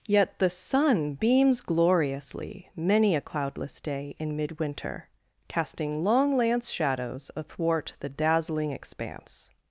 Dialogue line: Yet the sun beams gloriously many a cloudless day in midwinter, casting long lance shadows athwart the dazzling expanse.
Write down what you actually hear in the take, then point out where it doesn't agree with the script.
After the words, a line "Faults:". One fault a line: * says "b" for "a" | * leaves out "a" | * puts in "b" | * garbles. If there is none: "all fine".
Yet the sun beams gloriously many a cloudless day in midwinter, casting long lance shadows athwart the dazzling expanse.
Faults:
all fine